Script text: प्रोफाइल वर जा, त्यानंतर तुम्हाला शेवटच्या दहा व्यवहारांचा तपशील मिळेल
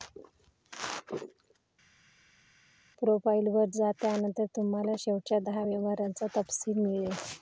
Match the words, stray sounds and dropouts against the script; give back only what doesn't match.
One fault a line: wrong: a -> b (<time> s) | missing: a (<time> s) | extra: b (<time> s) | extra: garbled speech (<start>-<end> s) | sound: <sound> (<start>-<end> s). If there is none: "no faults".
no faults